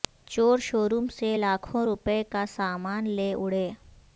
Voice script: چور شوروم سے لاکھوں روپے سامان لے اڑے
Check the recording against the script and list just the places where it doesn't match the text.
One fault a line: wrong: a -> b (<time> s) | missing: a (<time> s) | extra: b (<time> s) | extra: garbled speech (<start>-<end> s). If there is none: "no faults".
extra: کا (2.3 s)